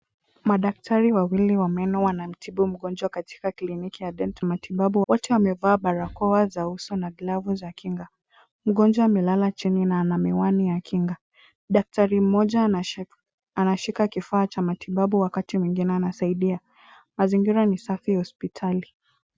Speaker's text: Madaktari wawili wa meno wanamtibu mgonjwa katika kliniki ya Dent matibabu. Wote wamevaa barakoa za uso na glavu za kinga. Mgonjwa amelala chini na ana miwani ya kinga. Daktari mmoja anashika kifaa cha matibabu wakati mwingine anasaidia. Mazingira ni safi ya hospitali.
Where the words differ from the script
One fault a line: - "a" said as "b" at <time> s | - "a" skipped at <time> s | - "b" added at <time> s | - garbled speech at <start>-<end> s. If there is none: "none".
none